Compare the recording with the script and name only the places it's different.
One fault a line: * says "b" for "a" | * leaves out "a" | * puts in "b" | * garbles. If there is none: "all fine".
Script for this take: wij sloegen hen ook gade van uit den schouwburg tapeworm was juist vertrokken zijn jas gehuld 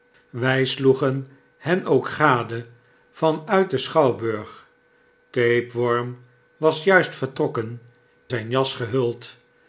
all fine